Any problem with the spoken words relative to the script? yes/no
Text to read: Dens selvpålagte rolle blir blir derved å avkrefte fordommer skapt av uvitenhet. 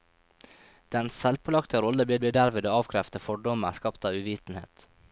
no